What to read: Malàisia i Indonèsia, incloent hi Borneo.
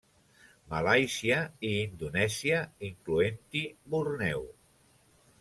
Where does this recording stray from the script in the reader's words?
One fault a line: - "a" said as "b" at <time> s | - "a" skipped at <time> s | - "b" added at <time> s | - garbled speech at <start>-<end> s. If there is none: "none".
none